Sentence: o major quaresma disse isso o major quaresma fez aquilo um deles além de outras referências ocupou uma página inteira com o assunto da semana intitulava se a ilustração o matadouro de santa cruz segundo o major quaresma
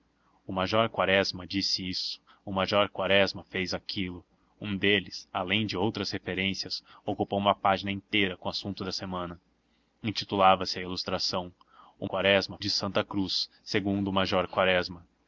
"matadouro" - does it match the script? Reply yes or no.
no